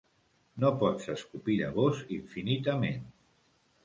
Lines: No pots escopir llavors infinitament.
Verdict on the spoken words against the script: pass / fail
pass